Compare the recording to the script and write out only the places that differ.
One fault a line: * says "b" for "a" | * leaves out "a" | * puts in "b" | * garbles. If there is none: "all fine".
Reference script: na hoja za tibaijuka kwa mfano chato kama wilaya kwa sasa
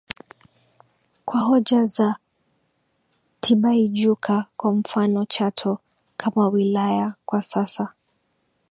* says "kwa" for "na"